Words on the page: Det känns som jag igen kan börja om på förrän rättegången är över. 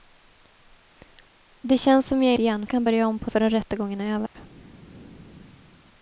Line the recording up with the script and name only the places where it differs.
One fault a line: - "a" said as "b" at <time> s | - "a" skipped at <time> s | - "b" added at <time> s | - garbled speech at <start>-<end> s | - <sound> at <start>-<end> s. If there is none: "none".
- dropout at 4.3-4.4 s